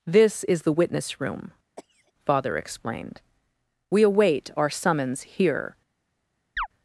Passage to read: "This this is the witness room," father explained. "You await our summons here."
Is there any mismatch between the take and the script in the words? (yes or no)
yes